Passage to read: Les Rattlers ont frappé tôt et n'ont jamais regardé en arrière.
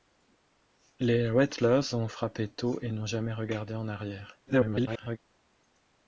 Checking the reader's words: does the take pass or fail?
fail